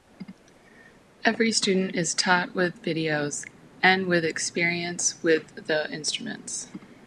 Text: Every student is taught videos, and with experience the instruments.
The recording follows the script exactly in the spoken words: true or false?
false